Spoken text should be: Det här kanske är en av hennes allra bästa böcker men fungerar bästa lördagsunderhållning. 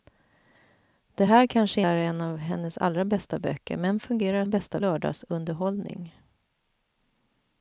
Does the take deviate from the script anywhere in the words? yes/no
no